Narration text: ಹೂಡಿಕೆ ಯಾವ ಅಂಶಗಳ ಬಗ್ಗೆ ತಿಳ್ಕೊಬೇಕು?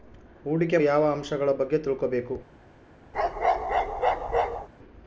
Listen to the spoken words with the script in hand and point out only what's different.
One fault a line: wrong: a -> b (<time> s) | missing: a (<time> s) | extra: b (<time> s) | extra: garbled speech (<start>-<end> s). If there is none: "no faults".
no faults